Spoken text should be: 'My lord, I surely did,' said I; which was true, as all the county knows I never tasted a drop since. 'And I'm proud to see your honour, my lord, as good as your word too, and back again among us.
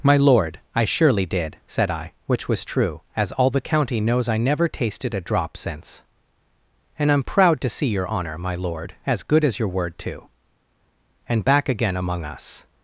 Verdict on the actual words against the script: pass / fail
pass